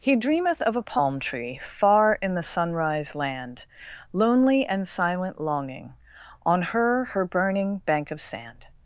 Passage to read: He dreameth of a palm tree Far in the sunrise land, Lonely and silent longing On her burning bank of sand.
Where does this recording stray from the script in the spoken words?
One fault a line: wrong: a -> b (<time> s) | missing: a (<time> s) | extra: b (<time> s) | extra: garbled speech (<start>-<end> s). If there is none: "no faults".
extra: her (7.0 s)